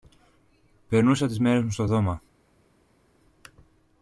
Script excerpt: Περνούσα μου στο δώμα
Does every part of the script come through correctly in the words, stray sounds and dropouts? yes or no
no